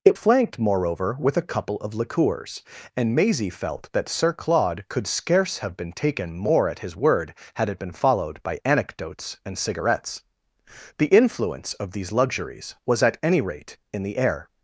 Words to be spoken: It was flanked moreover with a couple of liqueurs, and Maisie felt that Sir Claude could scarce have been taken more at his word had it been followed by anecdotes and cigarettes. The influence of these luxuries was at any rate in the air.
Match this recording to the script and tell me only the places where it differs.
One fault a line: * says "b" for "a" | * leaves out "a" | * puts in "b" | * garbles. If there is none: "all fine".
* leaves out "was"